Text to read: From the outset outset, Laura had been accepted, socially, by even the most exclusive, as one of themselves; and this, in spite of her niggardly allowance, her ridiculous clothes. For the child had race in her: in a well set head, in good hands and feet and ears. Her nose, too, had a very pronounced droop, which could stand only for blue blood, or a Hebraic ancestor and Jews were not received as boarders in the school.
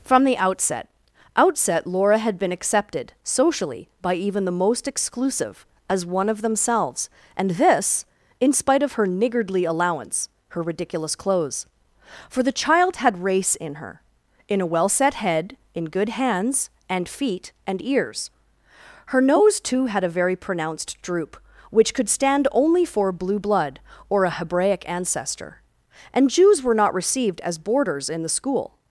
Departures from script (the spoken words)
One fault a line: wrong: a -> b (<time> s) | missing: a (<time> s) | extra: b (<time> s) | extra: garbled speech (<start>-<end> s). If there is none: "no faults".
no faults